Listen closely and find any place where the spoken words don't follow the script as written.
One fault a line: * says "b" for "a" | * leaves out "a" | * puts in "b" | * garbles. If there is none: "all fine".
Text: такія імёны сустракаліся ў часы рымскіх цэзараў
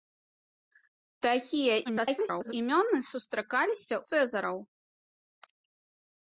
* garbles
* leaves out "ў часы рымскіх"